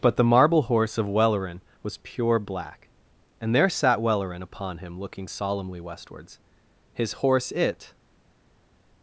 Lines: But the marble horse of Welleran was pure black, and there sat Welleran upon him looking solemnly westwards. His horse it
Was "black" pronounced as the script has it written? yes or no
yes